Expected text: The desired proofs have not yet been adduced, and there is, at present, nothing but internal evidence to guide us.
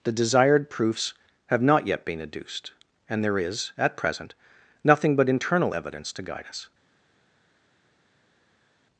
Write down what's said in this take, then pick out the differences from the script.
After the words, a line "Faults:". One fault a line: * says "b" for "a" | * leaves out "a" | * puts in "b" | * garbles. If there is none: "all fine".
The desired proofs have not yet been adduced, and there is, at present, nothing but internal evidence to guide us.
Faults:
all fine